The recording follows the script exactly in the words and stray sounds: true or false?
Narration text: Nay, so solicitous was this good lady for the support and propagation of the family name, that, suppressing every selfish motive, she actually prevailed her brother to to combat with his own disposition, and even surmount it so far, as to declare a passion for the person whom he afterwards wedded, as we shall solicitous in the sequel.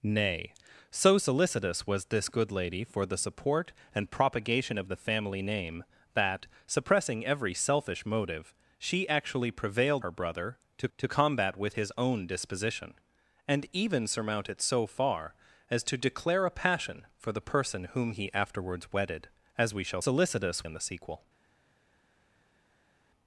true